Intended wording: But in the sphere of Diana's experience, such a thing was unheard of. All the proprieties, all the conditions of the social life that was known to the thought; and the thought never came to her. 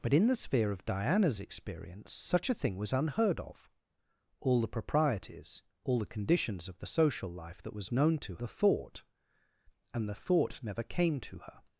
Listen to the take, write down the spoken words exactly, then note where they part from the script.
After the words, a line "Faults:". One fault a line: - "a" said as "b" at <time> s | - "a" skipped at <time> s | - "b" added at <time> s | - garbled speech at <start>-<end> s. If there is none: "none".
But in the sphere of Diana's experience, such a thing was unheard of. All the proprieties, all the conditions of the social life that was known to the thought; and the thought never came to her.
Faults:
none